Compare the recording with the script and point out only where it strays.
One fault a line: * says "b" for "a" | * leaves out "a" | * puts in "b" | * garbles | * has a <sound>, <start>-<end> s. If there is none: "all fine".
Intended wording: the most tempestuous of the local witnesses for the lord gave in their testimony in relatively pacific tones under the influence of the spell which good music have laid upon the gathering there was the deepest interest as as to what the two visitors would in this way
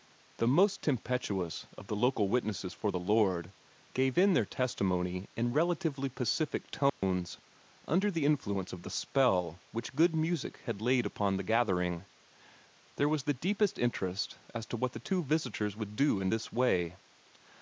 * has a dropout, 6.9-7.0 s
* says "had" for "have"
* leaves out "as"
* puts in "do"